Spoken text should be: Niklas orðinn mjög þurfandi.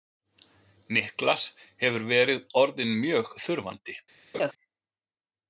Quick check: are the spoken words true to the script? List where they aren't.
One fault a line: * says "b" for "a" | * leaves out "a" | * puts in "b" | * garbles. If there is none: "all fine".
* puts in "hefur verið"